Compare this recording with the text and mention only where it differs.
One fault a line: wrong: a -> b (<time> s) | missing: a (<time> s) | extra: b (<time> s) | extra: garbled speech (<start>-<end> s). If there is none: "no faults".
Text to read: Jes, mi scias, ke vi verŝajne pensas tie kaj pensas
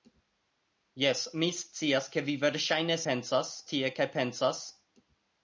no faults